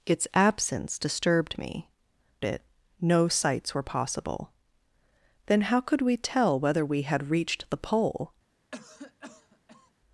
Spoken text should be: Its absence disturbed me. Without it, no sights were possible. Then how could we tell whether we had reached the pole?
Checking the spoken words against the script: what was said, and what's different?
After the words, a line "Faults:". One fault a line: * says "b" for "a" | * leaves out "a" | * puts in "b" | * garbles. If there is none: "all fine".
Its absence disturbed me. It, no sights were possible. Then how could we tell whether we had reached the pole?
Faults:
* leaves out "Without"